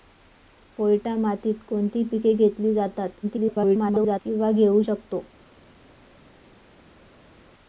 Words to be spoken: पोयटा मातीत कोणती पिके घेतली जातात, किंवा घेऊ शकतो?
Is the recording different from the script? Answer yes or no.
yes